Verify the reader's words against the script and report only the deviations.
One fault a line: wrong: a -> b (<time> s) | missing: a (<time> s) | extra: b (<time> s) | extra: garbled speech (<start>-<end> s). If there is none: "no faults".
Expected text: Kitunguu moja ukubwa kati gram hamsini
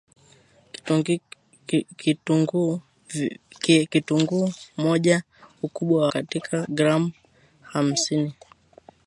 no faults